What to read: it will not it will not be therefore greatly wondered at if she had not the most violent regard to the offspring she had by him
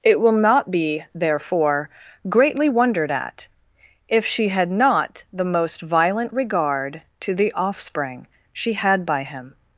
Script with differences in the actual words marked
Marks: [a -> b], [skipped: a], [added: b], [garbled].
it will not [skipped: it will not] be therefore greatly wondered at if she had not the most violent regard to the offspring she had by him